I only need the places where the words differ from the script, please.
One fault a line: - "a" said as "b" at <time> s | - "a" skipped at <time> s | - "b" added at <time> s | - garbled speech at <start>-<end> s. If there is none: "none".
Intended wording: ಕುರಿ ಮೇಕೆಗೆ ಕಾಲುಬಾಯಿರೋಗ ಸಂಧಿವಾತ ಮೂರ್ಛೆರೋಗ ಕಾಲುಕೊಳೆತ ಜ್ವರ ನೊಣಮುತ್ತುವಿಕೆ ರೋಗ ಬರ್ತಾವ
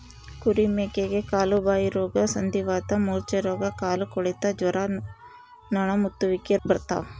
- "ರೋಗ" skipped at 6.6 s